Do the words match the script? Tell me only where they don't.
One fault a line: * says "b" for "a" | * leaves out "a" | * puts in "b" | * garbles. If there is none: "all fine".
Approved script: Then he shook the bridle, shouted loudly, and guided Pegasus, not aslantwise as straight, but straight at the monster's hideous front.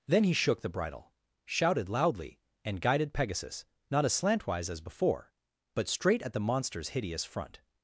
* says "before" for "straight"